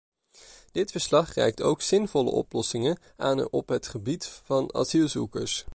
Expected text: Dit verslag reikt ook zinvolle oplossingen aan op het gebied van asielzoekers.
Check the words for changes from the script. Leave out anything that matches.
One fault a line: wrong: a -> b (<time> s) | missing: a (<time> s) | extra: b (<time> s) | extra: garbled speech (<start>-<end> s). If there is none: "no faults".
no faults